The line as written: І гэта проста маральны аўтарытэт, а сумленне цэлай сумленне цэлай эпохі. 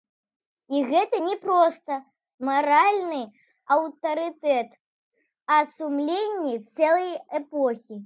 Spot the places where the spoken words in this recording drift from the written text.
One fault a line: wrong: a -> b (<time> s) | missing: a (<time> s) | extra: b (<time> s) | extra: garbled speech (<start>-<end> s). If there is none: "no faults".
extra: не (1.2 s)
missing: сумленне цэлай (7.1 s)